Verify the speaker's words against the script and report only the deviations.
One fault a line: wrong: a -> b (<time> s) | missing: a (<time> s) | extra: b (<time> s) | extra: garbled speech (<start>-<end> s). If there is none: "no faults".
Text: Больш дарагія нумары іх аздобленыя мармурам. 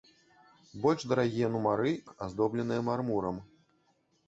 no faults